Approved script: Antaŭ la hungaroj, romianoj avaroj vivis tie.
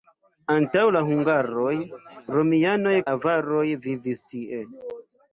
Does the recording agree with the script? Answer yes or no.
yes